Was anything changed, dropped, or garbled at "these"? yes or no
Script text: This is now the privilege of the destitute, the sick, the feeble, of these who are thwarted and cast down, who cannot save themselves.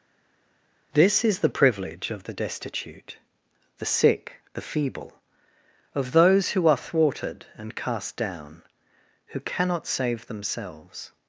yes